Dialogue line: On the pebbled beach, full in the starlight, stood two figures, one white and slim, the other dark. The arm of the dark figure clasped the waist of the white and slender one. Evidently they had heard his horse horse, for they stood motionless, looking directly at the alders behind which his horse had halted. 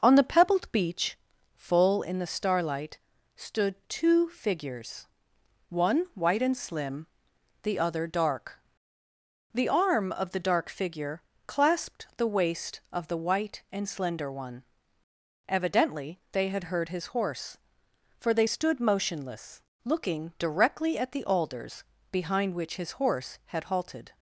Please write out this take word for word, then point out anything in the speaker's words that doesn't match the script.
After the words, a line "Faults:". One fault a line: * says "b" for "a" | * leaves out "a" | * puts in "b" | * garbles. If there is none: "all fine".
On the pebbled beach, full in the starlight, stood two figures, one white and slim, the other dark. The arm of the dark figure clasped the waist of the white and slender one. Evidently they had heard his horse, for they stood motionless, looking directly at the alders behind which his horse had halted.
Faults:
* leaves out "horse"